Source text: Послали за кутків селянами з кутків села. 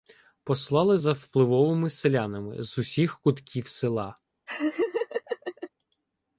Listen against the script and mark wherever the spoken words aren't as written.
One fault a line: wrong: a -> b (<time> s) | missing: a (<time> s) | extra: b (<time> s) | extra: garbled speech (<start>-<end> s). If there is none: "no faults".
wrong: кутків -> впливовими (1.1 s)
extra: усіх (2.8 s)